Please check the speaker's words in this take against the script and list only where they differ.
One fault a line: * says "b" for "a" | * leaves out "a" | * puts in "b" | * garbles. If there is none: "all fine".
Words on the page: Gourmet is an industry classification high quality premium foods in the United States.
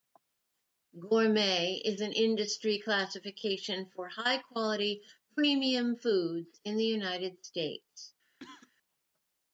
* puts in "for"